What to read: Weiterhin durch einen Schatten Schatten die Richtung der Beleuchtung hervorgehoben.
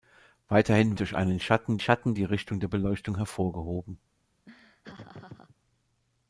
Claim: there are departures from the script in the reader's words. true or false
false